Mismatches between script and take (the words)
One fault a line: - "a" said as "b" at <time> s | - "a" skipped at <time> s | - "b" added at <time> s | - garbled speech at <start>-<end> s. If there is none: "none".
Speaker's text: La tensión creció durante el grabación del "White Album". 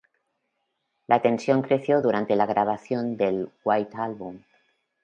- "el" said as "la" at 2.4 s